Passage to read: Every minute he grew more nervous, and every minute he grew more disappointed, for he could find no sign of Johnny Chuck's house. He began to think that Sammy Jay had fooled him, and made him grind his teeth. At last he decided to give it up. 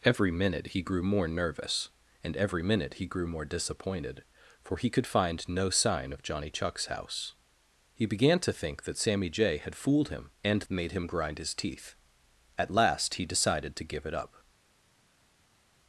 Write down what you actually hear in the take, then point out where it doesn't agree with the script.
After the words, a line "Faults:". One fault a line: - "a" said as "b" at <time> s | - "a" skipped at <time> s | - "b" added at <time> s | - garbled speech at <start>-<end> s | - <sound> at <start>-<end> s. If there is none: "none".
Every minute he grew more nervous, and every minute he grew more disappointed, for he could find no sign of Johnny Chuck's house. He began to think that Sammy Jay had fooled him, and made him grind his teeth. At last he decided to give it up.
Faults:
none